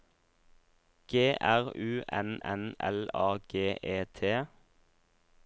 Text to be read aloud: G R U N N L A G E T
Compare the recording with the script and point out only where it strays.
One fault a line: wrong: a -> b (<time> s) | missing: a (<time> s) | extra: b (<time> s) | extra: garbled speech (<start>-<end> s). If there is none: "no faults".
no faults